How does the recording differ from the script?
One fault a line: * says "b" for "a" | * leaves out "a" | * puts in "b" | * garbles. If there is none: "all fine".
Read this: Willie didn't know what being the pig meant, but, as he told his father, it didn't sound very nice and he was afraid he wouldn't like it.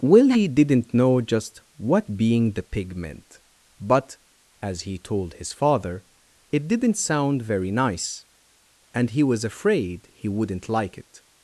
* puts in "just"